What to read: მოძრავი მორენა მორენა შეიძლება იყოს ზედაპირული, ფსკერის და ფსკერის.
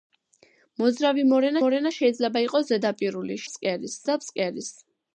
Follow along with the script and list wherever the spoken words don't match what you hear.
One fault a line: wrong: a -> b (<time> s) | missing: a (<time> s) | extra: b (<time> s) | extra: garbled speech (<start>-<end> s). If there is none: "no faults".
no faults